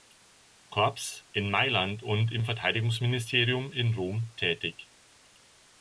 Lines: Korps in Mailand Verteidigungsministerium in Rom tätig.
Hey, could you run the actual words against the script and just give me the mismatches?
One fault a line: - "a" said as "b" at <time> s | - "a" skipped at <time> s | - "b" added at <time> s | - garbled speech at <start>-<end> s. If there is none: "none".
- "und im" added at 2.0 s